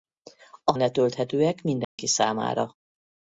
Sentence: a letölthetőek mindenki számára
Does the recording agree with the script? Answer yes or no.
yes